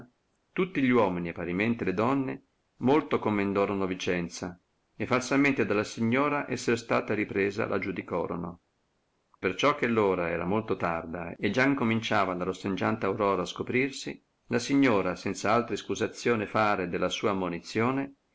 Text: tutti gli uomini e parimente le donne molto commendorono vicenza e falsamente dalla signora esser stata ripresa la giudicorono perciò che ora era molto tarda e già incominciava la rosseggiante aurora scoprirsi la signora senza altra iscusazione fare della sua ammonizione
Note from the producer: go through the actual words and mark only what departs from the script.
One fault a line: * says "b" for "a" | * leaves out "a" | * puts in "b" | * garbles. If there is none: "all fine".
all fine